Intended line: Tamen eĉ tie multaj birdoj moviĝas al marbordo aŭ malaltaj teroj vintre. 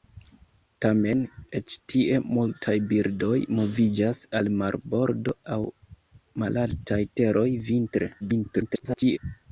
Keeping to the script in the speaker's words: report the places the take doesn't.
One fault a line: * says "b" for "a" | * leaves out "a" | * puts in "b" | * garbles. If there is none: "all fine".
* garbles